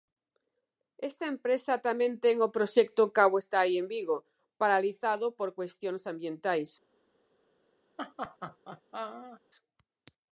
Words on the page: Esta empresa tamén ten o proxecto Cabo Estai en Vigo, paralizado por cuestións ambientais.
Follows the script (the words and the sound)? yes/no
no